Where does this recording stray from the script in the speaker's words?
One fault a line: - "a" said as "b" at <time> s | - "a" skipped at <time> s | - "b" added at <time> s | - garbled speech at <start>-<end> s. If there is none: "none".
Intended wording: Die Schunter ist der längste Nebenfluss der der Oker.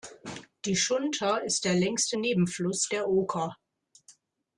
- "der" skipped at 3.1 s